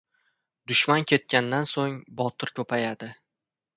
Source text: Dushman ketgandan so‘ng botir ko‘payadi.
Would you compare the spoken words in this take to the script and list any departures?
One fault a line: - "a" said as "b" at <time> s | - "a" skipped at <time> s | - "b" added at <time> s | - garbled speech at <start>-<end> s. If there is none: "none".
none